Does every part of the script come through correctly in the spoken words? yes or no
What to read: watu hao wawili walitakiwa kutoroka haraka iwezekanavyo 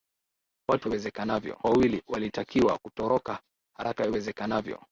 no